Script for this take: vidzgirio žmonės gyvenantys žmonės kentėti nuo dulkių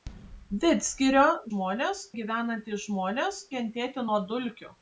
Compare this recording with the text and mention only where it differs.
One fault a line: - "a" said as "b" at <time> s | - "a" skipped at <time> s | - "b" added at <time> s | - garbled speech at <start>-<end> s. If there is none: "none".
none